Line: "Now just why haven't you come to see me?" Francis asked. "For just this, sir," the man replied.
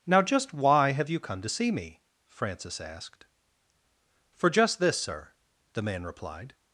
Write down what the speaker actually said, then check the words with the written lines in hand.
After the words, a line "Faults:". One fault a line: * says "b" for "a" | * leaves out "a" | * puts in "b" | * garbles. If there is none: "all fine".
"Now just why have you come to see me?" Francis asked. "For just this, sir," the man replied.
Faults:
* says "have" for "haven't"